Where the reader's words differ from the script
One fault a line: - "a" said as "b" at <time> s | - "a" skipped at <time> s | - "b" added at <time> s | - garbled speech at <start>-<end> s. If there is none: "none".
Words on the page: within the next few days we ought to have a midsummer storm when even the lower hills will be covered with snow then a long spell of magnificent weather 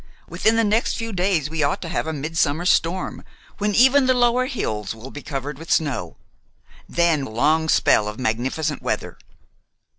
none